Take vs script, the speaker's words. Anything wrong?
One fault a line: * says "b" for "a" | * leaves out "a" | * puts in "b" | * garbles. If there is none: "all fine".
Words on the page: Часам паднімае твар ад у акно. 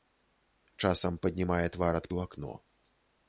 all fine